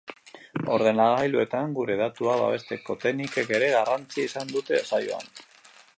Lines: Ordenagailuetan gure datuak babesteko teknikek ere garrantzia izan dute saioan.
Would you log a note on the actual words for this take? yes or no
no